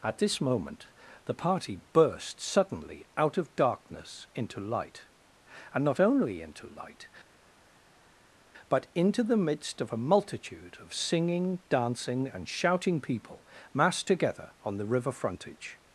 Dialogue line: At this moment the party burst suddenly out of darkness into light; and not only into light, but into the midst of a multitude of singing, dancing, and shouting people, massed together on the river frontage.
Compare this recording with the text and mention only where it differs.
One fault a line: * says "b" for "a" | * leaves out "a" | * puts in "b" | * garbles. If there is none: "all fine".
all fine